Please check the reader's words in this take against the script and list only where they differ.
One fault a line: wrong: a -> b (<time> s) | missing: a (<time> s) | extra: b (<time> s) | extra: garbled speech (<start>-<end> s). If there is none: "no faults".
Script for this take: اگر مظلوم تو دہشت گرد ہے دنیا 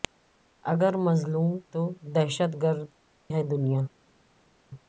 no faults